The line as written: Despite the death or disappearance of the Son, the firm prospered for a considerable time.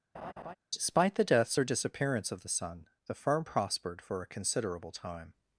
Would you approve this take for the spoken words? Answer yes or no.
no